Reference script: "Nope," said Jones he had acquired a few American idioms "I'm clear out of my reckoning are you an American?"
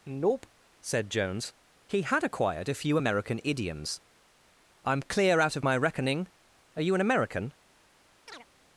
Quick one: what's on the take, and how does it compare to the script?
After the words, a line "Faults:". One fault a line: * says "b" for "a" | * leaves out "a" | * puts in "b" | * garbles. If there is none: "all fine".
"Nope," said Jones he had acquired a few American idioms "I'm clear out of my reckoning are you an American?"
Faults:
all fine